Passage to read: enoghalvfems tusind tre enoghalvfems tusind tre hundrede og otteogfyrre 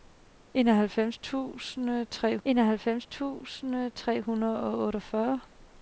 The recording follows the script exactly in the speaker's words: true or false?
true